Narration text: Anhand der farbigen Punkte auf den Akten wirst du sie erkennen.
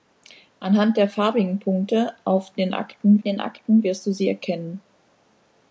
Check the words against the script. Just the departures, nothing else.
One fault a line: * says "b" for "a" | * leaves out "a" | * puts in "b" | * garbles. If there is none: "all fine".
* puts in "den Akten"